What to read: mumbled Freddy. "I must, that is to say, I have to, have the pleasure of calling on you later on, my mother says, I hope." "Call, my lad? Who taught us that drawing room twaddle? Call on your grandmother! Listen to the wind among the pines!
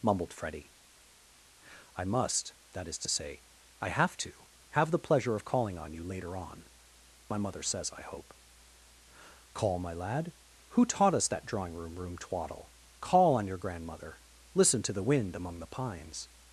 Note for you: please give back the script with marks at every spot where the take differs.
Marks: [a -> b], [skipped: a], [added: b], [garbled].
mumbled Freddy. "I must, that is to say, I have to, have the pleasure of calling on you later on, my mother says, I hope." "Call, my lad? Who taught us that drawing room [added: room] twaddle? Call on your grandmother! Listen to the wind among the pines!